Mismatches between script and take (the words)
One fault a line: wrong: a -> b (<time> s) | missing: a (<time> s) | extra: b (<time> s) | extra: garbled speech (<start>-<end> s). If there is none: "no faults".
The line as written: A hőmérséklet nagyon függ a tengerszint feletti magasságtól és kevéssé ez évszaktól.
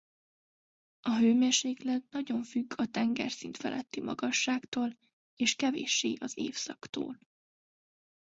wrong: ez -> az (6.2 s)